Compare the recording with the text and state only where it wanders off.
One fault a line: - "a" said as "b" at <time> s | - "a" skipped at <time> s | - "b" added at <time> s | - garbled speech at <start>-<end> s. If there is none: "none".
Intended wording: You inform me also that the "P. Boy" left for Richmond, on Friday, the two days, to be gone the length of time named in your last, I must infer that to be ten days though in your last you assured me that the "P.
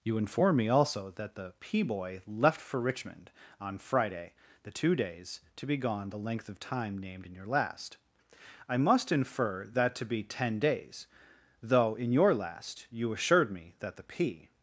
none